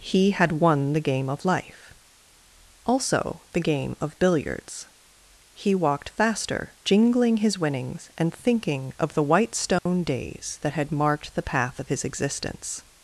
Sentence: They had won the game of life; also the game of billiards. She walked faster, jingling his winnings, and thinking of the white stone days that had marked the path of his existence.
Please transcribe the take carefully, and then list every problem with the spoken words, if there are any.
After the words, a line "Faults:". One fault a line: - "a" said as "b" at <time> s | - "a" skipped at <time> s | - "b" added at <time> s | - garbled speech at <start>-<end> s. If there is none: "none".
He had won the game of life; also the game of billiards. He walked faster, jingling his winnings, and thinking of the white stone days that had marked the path of his existence.
Faults:
- "They" said as "He" at 0.0 s
- "She" said as "He" at 5.5 s